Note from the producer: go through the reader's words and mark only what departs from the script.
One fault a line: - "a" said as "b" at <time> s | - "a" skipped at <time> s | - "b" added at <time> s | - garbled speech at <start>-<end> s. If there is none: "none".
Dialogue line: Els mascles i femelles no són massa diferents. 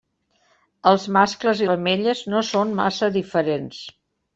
none